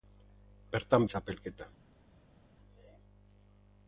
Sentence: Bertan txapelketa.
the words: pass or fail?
pass